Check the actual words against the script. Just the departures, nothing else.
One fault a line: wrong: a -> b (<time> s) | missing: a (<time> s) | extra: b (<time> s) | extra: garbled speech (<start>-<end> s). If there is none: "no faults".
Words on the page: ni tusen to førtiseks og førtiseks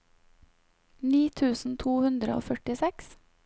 wrong: førtiseks -> hundre (2.1 s)